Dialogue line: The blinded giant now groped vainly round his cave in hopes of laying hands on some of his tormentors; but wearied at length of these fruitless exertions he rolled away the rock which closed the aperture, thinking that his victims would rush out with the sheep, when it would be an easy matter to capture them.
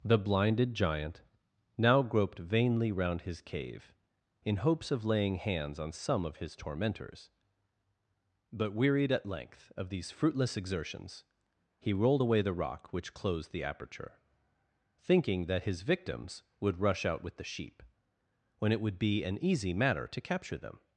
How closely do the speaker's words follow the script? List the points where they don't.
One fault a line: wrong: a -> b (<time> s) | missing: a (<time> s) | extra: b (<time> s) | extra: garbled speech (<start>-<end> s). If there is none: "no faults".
no faults